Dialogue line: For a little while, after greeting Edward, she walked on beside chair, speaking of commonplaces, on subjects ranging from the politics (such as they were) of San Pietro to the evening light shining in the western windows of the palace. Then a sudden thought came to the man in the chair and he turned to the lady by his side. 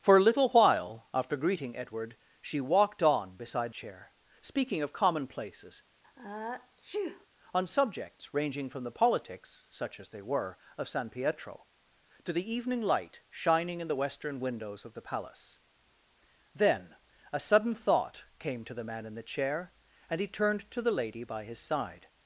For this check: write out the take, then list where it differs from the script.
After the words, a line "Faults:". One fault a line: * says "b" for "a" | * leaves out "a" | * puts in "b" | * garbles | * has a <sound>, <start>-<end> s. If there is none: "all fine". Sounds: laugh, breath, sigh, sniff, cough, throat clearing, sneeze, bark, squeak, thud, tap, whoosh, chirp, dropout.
For a little while, after greeting Edward, she walked on beside chair, speaking of commonplaces, on subjects ranging from the politics (such as they were) of San Pietro to the evening light shining in the western windows of the palace. Then a sudden thought came to the man in the chair and he turned to the lady by his side.
Faults:
* has a sneeze, 6.0-7.3 s